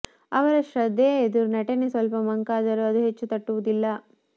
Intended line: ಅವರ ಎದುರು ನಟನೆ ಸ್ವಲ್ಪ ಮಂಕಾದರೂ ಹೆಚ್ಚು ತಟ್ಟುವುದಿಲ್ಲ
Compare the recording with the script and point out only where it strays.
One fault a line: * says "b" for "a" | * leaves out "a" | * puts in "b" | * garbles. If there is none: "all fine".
* puts in "ಶ್ರದ್ಧೆಯ"
* puts in "ಅದು"